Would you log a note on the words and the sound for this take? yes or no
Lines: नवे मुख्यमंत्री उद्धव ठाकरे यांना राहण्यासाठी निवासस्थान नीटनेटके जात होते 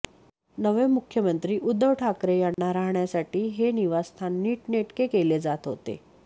yes